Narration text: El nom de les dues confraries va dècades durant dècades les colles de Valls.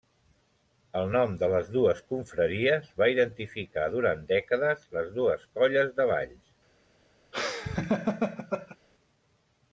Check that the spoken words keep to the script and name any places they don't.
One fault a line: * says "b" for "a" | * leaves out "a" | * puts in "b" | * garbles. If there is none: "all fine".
* says "identificar" for "dècades"
* puts in "dues"